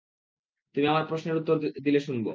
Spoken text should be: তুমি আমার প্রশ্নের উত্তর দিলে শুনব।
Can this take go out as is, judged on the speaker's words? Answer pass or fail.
pass